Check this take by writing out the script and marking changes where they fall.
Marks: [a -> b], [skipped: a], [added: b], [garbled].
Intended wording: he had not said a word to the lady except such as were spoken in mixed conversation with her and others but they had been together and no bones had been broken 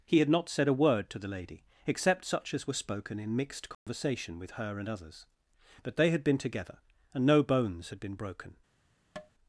he had not said a word to the lady except such as were spoken in mixed conversation with her and others but they had been together and no bones had been broken